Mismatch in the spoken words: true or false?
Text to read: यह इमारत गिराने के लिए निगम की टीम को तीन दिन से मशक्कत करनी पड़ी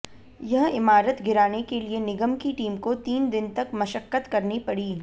true